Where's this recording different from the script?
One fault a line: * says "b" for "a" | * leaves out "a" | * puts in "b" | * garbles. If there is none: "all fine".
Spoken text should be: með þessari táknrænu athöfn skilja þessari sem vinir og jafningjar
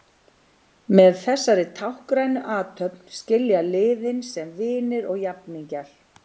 * says "liðin" for "þessari"